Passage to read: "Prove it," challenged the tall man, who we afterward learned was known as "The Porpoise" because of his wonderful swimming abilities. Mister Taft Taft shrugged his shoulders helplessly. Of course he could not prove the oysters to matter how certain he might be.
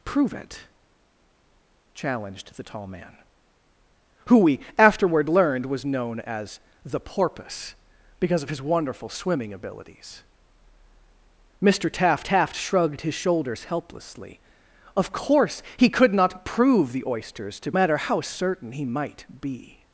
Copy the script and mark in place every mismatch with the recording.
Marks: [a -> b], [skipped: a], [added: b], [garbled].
"Prove it," challenged the tall man, who we afterward learned was known as "The Porpoise" because of his wonderful swimming abilities. Mister Taft Taft shrugged his shoulders helplessly. Of course he could not prove the oysters to matter how certain he might be.